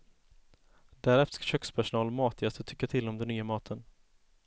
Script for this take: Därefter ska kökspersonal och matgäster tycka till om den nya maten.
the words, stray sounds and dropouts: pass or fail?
pass